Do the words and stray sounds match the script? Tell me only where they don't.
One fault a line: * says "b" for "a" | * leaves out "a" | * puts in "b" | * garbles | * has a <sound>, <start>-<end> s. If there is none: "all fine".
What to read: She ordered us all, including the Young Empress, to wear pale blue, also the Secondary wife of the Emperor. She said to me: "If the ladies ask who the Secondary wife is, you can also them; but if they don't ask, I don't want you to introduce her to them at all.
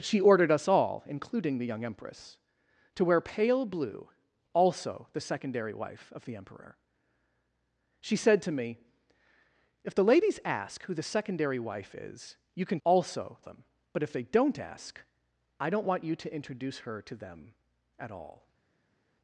all fine